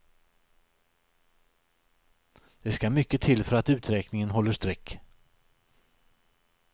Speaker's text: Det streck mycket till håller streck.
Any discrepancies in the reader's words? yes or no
yes